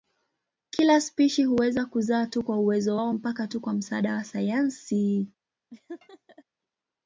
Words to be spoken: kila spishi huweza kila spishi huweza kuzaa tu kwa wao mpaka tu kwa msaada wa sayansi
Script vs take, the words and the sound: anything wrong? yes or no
yes